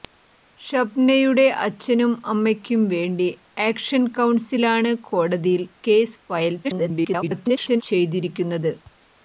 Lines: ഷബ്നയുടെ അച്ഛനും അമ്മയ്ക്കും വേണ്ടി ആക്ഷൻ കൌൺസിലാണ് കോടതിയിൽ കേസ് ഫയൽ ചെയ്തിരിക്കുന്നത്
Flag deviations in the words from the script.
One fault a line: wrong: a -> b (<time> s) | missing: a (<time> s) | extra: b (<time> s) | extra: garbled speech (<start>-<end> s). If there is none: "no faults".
extra: garbled speech (6.6-7.8 s)